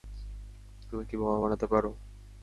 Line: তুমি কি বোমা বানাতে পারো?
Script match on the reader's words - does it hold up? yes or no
yes